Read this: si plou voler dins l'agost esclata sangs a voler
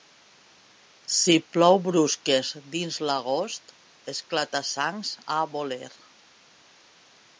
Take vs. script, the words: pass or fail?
fail